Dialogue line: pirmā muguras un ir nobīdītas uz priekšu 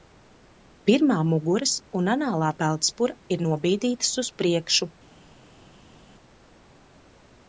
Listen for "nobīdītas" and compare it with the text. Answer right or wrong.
right